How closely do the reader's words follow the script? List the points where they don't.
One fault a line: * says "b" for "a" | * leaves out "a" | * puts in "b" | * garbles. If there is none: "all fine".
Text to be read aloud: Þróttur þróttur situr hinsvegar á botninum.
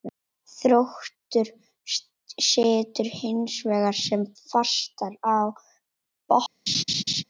* leaves out "þróttur"
* puts in "sem fastast"